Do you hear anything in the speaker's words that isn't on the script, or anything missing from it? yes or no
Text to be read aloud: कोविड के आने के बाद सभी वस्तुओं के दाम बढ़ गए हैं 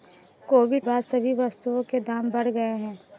yes